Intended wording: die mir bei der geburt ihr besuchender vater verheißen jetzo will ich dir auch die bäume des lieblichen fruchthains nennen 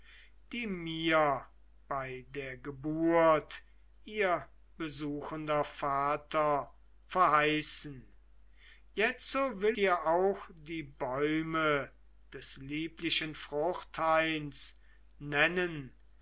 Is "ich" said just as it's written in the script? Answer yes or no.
no